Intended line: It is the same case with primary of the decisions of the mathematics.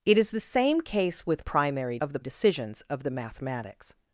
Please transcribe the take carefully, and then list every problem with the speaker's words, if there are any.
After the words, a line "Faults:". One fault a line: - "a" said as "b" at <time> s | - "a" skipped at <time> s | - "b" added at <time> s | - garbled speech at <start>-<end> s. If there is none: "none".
It is the same case with primary of the decisions of the mathematics.
Faults:
none